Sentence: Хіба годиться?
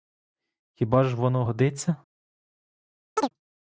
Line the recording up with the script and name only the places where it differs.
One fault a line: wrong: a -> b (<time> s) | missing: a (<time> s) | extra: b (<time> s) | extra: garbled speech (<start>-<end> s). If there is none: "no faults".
extra: ж воно (1.0 s)